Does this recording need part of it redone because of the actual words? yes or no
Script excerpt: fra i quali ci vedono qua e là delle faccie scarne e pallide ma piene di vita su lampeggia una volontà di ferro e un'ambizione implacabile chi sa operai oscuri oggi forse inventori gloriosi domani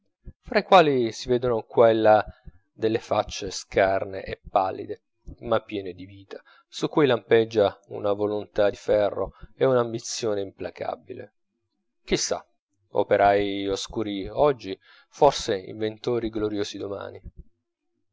yes